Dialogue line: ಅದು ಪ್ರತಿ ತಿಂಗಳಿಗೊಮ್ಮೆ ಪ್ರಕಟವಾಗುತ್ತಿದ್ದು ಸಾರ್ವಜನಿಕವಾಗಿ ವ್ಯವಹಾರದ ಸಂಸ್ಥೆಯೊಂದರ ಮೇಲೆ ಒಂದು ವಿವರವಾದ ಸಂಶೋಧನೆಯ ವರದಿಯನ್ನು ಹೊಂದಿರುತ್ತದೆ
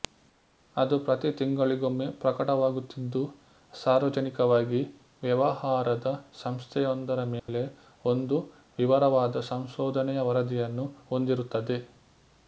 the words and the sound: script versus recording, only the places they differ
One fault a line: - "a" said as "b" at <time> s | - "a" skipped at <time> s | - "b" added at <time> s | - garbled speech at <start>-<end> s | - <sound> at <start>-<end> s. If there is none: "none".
- dropout at 7.4-7.5 s